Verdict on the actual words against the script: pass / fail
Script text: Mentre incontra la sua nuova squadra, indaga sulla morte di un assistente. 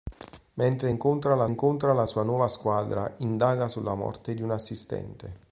fail